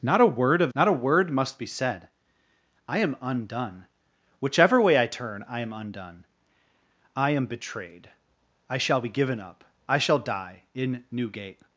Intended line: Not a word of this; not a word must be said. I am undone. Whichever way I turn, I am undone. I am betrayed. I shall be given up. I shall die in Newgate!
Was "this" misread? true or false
true